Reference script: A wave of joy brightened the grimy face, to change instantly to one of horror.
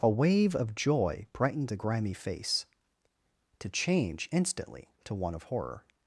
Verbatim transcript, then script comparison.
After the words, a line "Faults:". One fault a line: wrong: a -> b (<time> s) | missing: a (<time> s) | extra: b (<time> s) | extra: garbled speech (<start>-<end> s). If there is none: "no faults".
A wave of joy brightened the grimy face, to change instantly to one of horror.
Faults:
no faults